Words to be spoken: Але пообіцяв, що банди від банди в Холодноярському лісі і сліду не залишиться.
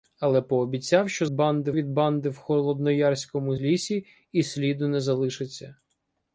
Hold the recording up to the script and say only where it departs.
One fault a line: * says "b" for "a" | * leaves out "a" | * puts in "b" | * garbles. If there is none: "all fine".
all fine